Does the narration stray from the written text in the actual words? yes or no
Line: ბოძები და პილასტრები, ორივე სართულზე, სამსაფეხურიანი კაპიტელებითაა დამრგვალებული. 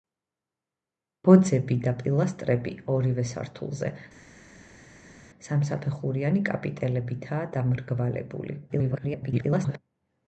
yes